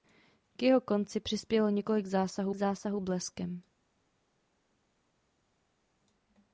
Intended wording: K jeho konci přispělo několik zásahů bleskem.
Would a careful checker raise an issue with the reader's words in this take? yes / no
yes